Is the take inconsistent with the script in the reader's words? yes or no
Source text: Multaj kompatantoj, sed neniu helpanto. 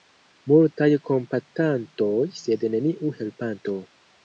no